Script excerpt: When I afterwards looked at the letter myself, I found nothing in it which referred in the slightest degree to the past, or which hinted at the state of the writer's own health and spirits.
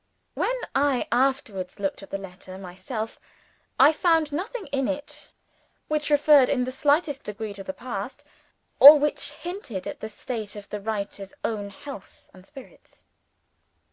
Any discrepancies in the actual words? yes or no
no